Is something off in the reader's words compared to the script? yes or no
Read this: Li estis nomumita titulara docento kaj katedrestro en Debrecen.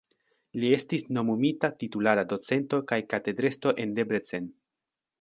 no